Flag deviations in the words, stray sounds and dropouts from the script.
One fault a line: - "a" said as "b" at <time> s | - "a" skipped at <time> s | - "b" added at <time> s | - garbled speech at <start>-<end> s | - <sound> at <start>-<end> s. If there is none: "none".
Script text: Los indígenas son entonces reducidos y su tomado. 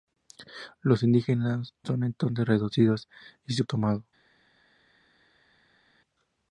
none